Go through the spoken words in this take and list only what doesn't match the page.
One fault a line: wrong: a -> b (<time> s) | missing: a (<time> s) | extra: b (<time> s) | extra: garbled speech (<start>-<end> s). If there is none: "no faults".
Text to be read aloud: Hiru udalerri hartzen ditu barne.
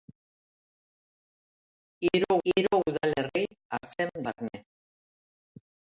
extra: hiru (2.5 s)
missing: ditu (4.1 s)